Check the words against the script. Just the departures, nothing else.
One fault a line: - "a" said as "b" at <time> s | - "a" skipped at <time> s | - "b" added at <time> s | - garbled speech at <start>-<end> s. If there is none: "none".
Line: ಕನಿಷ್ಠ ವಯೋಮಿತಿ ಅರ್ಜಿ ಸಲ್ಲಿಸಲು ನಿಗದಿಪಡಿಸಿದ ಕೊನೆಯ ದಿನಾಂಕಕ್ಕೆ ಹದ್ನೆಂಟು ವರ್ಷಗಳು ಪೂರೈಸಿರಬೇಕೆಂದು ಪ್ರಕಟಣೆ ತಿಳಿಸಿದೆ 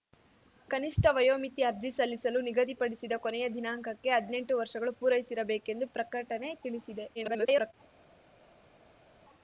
- garbled speech at 7.1-7.7 s